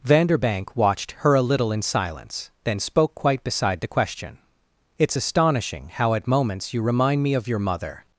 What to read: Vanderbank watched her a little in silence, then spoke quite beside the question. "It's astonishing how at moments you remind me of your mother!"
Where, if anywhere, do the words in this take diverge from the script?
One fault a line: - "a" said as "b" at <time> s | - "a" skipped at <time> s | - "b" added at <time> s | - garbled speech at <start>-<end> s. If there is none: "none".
none